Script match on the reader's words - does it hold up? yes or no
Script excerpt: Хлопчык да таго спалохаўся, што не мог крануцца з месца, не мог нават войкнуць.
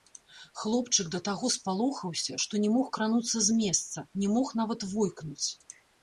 yes